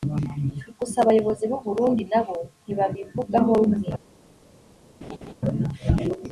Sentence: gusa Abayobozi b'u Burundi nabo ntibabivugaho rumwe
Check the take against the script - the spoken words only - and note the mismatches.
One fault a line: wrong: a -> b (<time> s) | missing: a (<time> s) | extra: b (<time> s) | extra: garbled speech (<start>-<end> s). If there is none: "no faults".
no faults